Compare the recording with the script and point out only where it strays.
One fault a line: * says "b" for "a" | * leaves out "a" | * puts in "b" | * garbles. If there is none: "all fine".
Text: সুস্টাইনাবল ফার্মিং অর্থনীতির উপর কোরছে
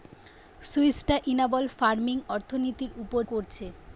all fine